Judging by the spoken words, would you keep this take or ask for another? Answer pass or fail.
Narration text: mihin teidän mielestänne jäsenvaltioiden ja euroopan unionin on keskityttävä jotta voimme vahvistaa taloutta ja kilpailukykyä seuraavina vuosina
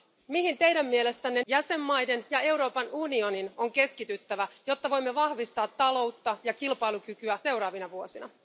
pass